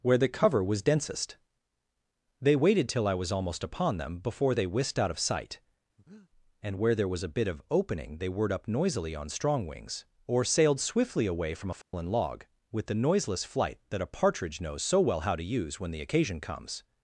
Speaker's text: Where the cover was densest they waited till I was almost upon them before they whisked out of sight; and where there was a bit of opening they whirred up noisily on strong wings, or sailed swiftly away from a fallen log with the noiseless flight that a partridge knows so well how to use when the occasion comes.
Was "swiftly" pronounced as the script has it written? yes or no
yes